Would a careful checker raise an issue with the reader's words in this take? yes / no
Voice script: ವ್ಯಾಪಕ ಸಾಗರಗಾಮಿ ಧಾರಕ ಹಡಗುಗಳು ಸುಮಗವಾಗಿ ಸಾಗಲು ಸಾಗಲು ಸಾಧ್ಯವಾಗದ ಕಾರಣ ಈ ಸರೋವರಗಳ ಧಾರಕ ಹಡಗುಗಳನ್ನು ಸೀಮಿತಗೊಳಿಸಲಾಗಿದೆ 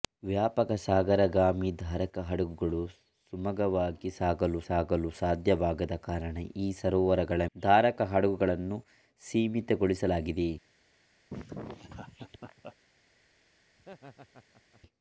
no